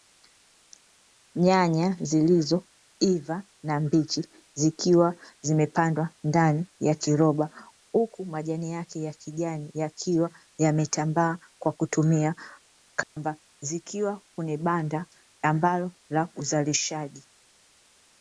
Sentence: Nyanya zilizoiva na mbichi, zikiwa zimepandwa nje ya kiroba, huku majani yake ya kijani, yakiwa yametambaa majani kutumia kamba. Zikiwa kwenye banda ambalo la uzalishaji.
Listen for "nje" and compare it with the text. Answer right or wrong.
wrong